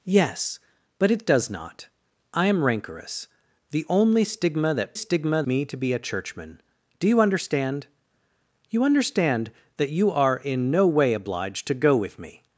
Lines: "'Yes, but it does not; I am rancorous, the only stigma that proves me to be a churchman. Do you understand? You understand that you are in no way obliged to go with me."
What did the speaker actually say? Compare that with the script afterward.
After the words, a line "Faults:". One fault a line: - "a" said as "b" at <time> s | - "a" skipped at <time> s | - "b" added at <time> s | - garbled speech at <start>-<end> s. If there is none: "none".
"'Yes, but it does not; I am rancorous, the only stigma that stigma me to be a churchman. Do you understand? You understand that you are in no way obliged to go with me."
Faults:
- "proves" said as "stigma" at 4.9 s